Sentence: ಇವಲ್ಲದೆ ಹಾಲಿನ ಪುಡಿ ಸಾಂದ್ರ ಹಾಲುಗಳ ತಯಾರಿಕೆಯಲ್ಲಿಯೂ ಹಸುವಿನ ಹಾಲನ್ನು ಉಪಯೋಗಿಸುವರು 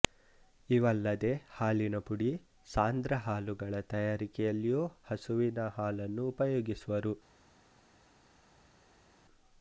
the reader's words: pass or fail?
pass